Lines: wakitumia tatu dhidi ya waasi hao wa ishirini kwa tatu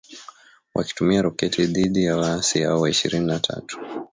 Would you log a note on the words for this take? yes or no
yes